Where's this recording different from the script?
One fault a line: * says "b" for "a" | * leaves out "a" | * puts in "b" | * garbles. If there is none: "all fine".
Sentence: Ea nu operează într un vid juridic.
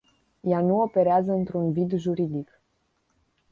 all fine